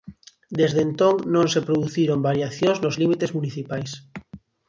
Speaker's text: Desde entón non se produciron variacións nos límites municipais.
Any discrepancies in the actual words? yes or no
no